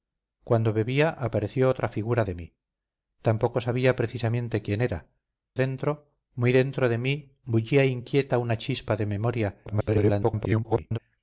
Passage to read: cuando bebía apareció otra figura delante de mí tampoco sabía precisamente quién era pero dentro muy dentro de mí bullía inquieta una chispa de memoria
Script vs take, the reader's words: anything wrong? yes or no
yes